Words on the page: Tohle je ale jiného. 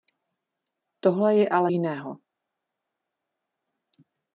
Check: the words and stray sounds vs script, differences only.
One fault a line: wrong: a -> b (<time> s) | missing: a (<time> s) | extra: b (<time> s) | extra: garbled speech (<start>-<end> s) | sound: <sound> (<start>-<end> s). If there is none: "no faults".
no faults